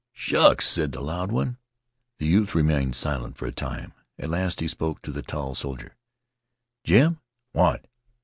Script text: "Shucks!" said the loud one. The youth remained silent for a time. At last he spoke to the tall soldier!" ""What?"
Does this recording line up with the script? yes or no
no